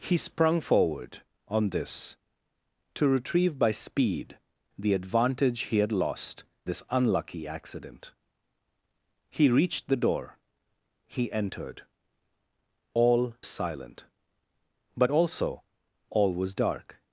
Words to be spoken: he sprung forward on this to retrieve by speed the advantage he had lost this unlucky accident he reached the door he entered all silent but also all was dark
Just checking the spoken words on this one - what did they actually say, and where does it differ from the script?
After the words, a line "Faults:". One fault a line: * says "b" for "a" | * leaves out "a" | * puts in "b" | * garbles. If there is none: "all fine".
he sprung forward on this to retrieve by speed the advantage he had lost this unlucky accident he reached the door he entered all silent but also all was dark
Faults:
all fine